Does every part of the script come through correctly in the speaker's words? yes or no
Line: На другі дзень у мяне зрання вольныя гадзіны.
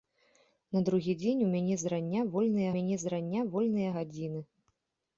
no